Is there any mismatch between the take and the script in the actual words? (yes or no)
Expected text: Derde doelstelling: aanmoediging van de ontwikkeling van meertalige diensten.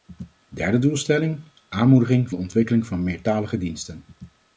yes